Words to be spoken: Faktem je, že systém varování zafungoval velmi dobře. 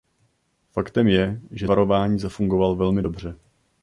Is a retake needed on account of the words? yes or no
yes